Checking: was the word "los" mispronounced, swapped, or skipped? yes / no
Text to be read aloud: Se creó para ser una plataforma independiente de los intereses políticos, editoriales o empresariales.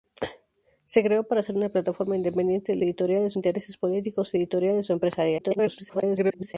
yes